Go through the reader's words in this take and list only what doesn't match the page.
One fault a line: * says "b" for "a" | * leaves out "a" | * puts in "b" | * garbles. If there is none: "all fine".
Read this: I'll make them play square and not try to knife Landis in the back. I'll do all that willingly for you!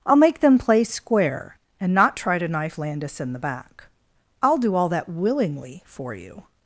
all fine